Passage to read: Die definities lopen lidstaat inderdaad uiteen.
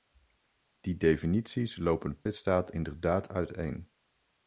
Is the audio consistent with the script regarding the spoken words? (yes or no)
yes